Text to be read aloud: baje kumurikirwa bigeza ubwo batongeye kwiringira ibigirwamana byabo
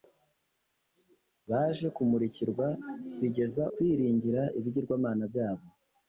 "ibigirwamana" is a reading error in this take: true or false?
false